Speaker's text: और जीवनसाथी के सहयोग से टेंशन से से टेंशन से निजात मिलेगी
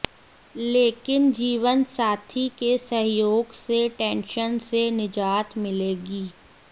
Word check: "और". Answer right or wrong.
wrong